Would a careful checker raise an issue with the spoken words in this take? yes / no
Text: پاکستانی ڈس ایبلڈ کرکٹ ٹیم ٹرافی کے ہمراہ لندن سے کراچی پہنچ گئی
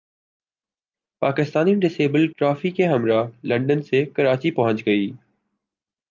yes